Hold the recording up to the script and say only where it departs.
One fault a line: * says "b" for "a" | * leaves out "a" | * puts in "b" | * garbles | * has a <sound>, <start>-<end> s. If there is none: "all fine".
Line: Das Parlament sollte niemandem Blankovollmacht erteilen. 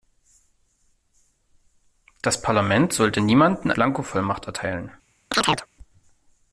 * has a chirp, 5.3-5.7 s